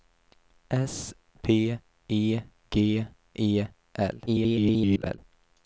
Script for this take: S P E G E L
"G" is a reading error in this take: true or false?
false